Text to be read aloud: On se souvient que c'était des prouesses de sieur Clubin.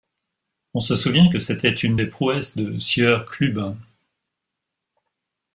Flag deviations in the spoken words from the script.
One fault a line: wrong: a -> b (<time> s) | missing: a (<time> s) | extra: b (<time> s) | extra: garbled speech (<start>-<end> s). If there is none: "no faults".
extra: une (1.7 s)